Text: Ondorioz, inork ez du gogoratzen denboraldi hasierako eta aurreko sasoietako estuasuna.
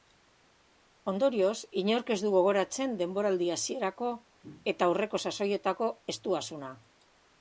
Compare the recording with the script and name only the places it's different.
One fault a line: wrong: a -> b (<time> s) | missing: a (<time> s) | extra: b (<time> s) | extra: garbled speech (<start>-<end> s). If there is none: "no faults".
no faults